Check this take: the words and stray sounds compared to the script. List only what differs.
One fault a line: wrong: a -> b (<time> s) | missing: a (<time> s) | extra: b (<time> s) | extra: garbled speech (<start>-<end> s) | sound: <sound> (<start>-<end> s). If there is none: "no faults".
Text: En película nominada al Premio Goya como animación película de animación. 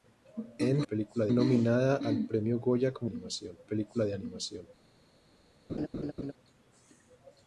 sound: laugh (5.7-6.3 s)